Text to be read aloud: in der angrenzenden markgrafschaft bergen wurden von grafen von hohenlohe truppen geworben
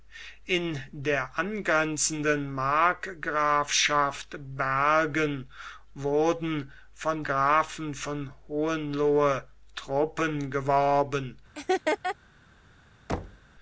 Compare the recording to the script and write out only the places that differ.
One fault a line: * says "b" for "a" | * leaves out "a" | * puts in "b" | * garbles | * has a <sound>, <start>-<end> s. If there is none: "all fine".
* has a laugh, 11.5-12.2 s
* has a thud, 13.1-13.5 s